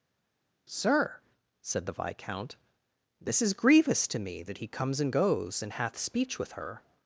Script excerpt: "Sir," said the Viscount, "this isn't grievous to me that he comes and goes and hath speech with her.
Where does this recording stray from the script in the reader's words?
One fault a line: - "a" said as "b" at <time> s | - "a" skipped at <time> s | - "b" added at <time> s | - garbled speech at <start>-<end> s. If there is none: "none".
- "isn't" said as "is" at 3.4 s